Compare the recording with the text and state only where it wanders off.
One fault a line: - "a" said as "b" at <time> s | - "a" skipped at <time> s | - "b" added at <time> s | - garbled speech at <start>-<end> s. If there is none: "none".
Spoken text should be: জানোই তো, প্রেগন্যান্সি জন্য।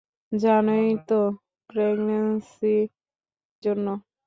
none